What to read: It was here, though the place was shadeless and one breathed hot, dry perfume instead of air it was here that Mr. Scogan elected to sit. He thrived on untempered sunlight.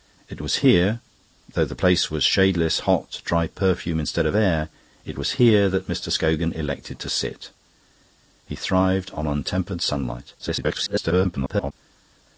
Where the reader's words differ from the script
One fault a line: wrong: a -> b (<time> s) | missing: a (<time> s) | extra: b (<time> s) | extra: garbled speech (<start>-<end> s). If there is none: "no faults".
missing: and one breathed (2.8 s)
extra: garbled speech (10.4-11.7 s)